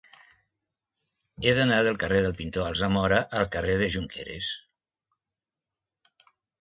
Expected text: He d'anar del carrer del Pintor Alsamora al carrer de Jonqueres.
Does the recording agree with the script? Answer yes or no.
yes